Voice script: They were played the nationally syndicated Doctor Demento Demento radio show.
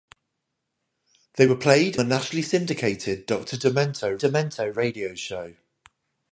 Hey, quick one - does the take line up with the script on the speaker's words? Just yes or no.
yes